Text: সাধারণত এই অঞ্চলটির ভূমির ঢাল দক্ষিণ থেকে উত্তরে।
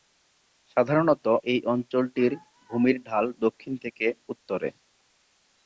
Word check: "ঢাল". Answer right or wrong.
right